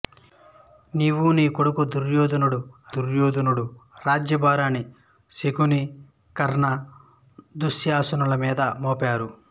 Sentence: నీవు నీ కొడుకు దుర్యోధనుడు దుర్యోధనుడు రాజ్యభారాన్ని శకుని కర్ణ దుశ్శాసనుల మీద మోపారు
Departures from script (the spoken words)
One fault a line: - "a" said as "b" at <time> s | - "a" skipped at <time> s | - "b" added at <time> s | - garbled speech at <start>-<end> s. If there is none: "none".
none